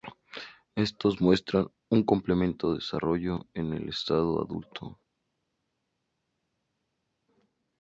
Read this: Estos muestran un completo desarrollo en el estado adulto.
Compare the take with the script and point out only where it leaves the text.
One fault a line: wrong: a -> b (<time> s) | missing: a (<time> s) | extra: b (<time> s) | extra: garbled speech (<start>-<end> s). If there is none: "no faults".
no faults